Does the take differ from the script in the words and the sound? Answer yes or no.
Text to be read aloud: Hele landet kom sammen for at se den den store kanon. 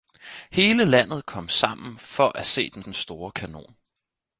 no